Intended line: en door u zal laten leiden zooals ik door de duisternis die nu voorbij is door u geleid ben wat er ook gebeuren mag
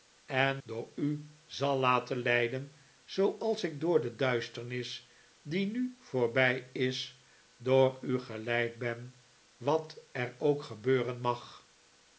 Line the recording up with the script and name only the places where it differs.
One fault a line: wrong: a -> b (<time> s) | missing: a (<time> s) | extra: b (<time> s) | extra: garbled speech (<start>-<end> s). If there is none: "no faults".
no faults